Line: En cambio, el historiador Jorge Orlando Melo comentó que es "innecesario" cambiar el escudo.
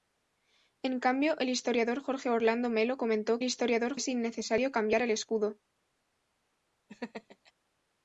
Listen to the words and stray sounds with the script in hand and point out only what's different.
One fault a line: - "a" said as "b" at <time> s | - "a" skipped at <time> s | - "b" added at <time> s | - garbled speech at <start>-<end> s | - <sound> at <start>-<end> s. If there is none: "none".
- "que" said as "historiador" at 3.4 s
- laugh at 6.9-7.5 s